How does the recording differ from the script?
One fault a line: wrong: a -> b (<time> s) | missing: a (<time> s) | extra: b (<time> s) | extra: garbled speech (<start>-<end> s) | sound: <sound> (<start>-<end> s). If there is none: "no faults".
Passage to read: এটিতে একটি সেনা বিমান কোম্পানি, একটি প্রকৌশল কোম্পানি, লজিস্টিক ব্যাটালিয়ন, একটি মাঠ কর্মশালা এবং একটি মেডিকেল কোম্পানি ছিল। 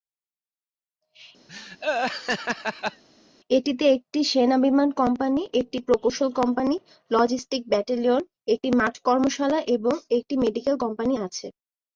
sound: laugh (1.5-3.0 s)
wrong: ছিল -> আছে (11.3 s)